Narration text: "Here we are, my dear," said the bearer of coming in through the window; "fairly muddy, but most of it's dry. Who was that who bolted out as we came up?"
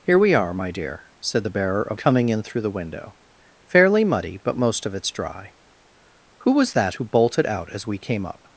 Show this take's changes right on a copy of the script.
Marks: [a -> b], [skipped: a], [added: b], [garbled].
"Here we are, my dear," said the bearer of coming in through the window; "fairly muddy, but most of it's dry. Who was that who bolted out as we came up?"